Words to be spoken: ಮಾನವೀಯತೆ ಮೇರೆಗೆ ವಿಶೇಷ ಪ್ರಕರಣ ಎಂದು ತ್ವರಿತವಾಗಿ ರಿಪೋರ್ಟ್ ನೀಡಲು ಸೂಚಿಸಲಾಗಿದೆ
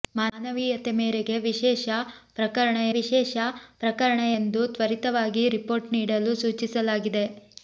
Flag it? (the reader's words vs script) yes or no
yes